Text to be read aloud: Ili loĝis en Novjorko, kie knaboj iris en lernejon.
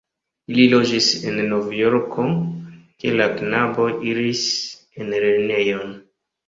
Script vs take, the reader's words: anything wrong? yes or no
yes